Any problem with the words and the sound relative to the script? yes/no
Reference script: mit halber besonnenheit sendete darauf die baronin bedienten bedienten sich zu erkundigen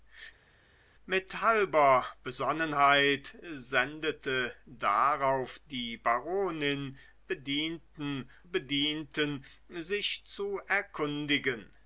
no